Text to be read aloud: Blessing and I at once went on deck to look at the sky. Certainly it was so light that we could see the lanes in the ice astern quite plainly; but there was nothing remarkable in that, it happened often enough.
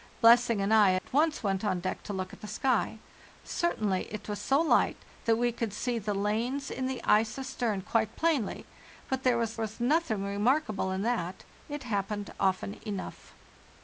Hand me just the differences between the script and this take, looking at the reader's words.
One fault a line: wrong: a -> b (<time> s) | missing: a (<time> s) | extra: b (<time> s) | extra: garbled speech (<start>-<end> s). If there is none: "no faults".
extra: was (9.6 s)